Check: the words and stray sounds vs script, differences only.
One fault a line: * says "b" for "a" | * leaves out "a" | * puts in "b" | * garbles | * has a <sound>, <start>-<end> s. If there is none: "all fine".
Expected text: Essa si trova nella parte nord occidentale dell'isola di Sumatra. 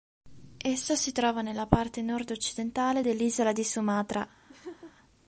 * has a laugh, 4.5-4.9 s